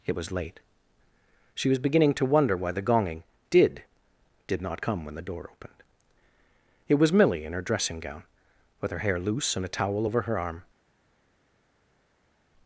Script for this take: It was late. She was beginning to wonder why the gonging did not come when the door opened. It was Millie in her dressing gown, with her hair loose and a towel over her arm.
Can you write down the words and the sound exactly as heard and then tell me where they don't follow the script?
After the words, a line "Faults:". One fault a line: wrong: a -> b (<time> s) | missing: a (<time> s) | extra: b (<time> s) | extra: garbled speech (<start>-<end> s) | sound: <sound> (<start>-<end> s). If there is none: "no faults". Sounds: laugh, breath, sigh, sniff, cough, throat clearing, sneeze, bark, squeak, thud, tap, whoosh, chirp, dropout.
It was late. She was beginning to wonder why the gonging did did not come when the door opened. It was Millie in her dressing gown, with her hair loose and a towel over her arm.
Faults:
extra: did (4.5 s)